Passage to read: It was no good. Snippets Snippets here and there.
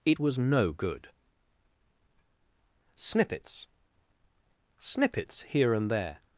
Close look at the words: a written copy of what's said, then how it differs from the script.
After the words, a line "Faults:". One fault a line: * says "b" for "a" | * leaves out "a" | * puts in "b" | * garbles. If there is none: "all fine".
It was no good. Snippets Snippets here and there.
Faults:
all fine